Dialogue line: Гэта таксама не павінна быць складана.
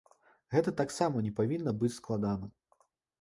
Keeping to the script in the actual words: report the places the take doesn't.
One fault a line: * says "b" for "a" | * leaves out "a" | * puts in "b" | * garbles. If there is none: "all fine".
all fine